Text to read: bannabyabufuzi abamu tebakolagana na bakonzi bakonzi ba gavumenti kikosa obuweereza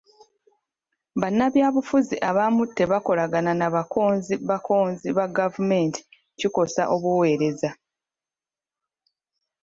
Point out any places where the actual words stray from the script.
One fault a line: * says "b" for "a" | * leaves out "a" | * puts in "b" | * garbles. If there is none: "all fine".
all fine